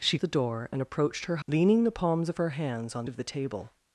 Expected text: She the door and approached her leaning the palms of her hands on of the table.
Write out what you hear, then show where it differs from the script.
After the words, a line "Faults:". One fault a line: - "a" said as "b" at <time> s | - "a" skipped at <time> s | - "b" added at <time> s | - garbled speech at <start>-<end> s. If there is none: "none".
She the door and approached her leaning the palms of her hands on of the table.
Faults:
none